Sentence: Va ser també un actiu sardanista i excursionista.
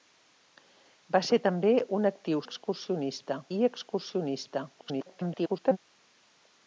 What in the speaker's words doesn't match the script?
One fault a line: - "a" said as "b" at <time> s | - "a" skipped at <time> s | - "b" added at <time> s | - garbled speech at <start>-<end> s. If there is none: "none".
- "sardanista" said as "excursionista" at 2.5 s
- garbled speech at 4.8-5.8 s